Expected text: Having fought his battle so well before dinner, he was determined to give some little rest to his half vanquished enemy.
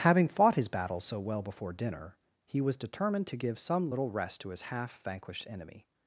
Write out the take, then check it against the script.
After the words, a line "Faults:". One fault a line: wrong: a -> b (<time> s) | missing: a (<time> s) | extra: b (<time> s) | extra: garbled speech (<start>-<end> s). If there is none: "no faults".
Having fought his battle so well before dinner, he was determined to give some little rest to his half vanquished enemy.
Faults:
no faults